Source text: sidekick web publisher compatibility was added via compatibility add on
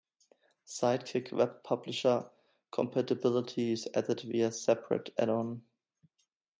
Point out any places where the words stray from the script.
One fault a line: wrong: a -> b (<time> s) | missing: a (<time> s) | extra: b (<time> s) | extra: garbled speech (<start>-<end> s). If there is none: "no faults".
wrong: was -> is (3.7 s)
wrong: compatibility -> separate (4.5 s)